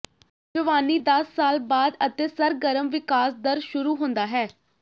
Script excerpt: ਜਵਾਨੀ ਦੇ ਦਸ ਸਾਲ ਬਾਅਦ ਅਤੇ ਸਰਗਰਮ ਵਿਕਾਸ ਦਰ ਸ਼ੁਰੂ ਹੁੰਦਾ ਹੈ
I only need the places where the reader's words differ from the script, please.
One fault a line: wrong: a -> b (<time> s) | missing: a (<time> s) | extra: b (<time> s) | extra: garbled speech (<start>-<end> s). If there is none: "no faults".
missing: ਦੇ (1.0 s)